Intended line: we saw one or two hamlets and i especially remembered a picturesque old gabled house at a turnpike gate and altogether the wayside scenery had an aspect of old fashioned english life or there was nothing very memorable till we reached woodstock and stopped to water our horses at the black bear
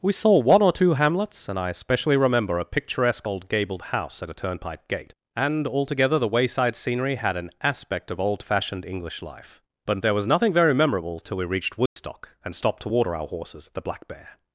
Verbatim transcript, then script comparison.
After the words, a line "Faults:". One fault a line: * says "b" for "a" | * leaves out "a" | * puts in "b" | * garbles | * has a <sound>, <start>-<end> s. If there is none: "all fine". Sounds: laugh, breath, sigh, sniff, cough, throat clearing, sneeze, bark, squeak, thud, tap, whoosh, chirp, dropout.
we saw one or two hamlets and i especially remember a picturesque old gabled house at a turnpike gate and altogether the wayside scenery had an aspect of old fashioned english life but there was nothing very memorable till we reached woodstock and stopped to water our horses at the black bear
Faults:
* says "remember" for "remembered"
* says "but" for "or"
* has a dropout, 11.9-12.0 s